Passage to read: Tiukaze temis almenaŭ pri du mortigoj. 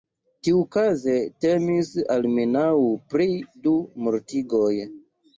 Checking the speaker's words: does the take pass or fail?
pass